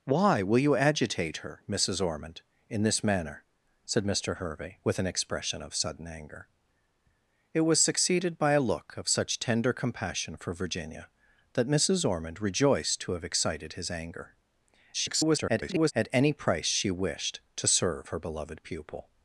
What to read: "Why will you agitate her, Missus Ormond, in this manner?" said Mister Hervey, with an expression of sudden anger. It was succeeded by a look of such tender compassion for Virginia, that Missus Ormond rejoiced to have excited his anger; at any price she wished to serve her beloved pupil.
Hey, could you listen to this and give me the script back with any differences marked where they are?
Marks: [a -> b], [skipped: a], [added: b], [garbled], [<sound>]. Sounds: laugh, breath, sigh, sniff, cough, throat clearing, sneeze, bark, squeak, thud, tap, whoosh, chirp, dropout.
"Why will you agitate her, Missus Ormond, in this manner?" said Mister Hervey, with an expression of sudden anger. It was succeeded by a look of such tender compassion for Virginia, that Missus Ormond rejoiced to have excited his anger; [garbled] at any price she wished to serve her beloved pupil.